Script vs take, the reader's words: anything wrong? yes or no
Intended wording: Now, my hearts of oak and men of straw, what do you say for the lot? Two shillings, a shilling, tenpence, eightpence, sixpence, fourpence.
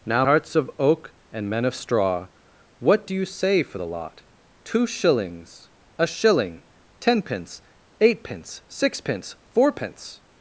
yes